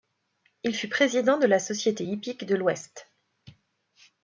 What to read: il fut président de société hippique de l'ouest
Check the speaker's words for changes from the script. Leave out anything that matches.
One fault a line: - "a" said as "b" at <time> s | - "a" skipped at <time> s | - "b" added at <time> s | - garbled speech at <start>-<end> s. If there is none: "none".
- "la" added at 1.4 s